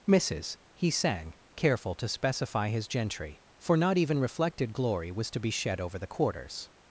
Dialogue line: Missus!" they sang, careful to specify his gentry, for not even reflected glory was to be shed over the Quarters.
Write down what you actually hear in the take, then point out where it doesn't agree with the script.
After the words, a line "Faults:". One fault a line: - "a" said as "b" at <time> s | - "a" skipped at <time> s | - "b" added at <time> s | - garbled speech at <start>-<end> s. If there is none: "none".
Missus!" he sang, careful to specify his gentry, for not even reflected glory was to be shed over the Quarters.
Faults:
- "they" said as "he" at 0.7 s